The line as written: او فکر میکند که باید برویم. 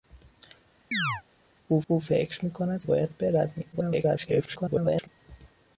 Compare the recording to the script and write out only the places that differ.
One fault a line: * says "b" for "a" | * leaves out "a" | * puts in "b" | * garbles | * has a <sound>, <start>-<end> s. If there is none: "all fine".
* has a chirp, 0.9-1.2 s
* puts in "او"
* leaves out "که"
* garbles